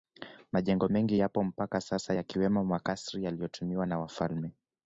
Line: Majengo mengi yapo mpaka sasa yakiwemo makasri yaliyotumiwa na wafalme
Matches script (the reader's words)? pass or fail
pass